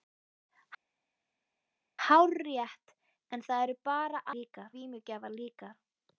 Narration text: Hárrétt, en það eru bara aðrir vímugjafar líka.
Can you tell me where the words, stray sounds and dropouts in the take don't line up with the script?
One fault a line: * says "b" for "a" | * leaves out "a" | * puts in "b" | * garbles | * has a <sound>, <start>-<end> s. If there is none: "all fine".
* says "líka" for "aðrir"